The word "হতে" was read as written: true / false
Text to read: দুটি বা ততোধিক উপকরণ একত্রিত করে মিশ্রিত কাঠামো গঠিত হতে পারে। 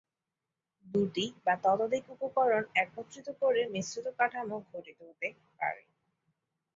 true